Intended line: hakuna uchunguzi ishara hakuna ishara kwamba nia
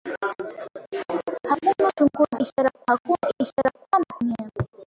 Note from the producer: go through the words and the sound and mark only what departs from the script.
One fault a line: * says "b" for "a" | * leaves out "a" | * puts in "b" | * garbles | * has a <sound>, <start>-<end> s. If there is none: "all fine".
* has a dropout, 3.6-3.7 s